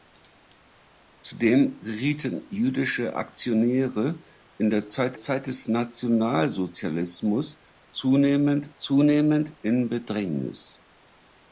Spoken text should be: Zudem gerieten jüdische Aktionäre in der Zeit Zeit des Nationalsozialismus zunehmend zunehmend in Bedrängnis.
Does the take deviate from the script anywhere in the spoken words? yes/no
no